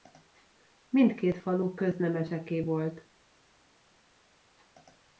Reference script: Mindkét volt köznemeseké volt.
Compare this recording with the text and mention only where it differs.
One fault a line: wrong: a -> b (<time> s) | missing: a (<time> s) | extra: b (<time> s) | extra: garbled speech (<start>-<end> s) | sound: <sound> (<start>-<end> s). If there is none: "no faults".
wrong: volt -> falu (1.4 s)